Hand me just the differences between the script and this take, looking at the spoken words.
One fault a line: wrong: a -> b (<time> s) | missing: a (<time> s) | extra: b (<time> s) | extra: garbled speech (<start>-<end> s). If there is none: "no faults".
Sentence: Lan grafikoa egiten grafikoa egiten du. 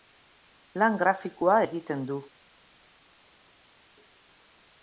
missing: grafikoa egiten (2.1 s)